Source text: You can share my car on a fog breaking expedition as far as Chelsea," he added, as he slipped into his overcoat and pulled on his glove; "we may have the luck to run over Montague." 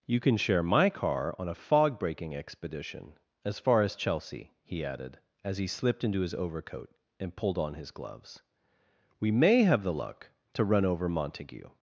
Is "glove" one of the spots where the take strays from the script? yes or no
yes